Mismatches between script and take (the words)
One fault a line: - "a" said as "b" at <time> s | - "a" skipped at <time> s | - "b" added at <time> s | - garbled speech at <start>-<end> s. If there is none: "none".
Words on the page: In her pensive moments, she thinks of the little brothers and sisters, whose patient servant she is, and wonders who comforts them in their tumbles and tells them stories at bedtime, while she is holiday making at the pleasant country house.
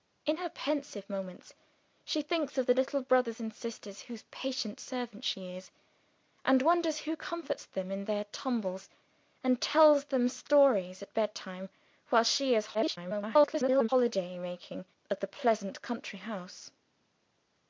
- garbled speech at 12.7-13.9 s